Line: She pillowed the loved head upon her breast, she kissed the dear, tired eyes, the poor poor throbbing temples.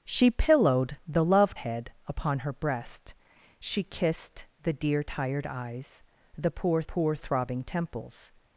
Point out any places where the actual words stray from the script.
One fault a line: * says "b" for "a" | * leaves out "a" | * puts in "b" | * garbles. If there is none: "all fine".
all fine